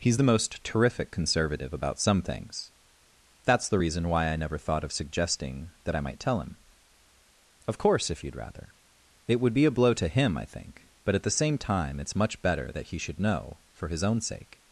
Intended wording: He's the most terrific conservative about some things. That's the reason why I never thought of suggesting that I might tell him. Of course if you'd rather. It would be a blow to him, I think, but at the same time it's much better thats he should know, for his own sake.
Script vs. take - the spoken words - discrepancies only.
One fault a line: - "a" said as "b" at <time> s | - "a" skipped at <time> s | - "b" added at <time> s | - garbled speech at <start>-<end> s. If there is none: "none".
- "thats" said as "that" at 12.7 s